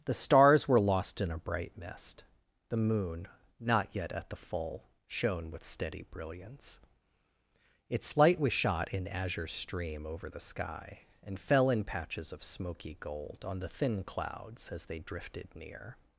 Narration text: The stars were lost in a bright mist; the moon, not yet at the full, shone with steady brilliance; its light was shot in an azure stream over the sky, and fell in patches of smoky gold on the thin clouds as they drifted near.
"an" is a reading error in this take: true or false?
true